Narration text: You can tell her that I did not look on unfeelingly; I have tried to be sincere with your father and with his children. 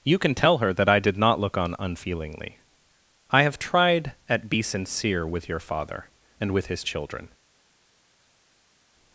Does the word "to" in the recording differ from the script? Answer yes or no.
yes